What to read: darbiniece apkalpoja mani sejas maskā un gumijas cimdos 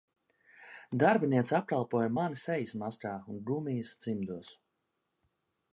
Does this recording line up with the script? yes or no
yes